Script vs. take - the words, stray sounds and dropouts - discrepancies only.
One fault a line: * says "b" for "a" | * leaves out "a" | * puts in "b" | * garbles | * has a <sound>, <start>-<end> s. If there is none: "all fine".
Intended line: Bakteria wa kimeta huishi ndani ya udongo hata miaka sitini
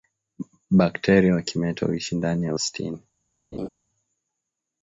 * leaves out "udongo hata miaka"
* has a laugh, 3.5-3.7 s